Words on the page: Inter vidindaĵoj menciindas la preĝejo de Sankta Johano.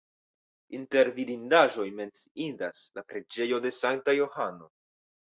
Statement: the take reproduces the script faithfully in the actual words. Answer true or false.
true